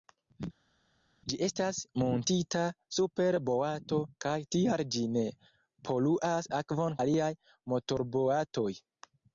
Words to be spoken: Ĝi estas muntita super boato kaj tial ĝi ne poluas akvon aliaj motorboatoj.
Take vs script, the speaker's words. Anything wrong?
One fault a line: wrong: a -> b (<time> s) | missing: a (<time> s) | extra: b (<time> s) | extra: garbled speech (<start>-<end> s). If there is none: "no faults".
no faults